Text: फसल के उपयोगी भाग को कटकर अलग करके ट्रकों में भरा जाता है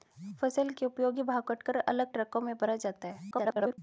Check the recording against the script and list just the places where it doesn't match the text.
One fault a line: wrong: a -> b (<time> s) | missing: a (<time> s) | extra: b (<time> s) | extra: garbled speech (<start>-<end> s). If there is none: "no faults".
missing: को (1.4 s)
missing: करके (2.1 s)
extra: garbled speech (3.3-3.8 s)